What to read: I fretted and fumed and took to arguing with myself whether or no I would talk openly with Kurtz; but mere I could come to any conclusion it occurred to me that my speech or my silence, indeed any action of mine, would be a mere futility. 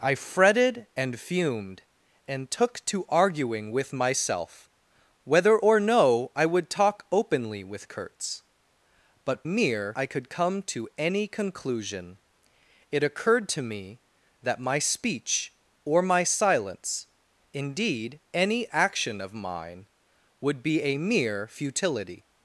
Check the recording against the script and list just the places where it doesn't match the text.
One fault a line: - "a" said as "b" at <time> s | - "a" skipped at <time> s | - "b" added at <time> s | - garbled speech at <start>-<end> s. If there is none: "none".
none